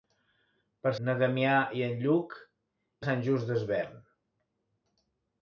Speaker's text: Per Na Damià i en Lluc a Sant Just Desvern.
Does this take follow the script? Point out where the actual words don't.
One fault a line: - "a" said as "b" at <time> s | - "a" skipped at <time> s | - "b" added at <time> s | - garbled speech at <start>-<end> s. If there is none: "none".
none